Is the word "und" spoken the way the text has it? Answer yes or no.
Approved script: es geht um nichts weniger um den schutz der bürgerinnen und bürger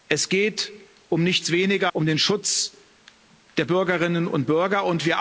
yes